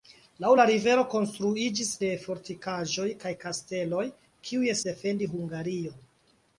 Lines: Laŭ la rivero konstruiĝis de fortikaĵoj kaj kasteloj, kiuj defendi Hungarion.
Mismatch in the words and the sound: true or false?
false